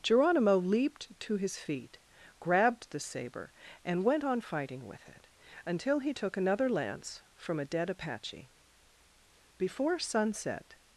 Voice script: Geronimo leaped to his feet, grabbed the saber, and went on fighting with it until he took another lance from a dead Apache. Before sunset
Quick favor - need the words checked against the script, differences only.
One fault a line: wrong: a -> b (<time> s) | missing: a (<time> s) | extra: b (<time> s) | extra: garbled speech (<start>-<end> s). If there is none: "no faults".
no faults